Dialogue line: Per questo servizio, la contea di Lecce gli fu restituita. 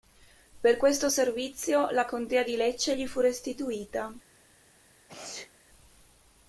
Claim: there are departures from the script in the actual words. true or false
false